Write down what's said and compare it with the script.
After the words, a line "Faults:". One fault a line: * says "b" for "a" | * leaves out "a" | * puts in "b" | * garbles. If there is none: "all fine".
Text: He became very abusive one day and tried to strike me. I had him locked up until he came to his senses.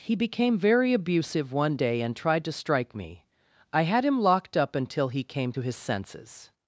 He became very abusive one day and tried to strike me. I had him locked up until he came to his senses.
Faults:
all fine